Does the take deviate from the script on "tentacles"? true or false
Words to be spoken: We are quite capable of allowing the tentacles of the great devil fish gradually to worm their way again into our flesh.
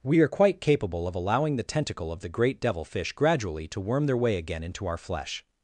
true